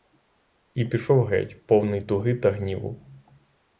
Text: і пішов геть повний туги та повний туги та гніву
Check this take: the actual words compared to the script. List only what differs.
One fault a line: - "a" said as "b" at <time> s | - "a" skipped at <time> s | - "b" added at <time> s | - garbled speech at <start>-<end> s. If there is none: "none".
- "повний туги та" skipped at 2.5 s